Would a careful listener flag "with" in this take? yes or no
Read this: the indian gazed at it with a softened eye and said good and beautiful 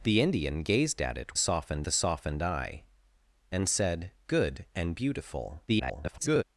yes